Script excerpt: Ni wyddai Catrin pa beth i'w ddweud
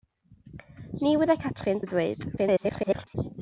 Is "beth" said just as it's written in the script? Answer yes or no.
no